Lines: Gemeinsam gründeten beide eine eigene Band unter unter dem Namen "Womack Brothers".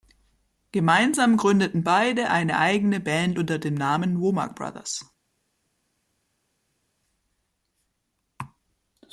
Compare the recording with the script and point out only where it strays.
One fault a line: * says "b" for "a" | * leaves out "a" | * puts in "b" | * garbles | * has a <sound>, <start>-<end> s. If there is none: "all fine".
* leaves out "unter"